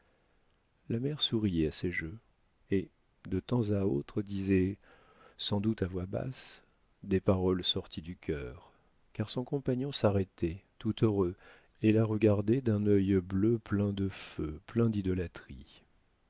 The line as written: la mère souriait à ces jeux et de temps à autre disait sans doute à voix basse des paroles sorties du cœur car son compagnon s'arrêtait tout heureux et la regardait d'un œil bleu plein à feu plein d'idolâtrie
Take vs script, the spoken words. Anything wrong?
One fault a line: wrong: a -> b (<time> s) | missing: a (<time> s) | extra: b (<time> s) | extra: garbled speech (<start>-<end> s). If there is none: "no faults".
wrong: à -> de (13.9 s)